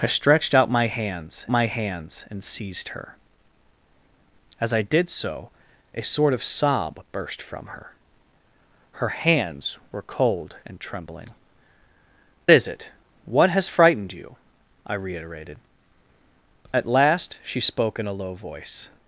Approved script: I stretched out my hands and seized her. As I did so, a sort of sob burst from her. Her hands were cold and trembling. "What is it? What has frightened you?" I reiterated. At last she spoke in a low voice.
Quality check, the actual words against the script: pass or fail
fail